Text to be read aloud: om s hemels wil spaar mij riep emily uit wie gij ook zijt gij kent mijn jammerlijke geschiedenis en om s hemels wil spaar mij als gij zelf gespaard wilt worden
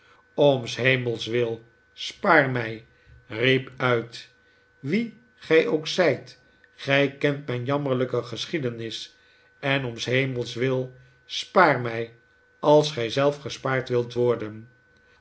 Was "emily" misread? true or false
true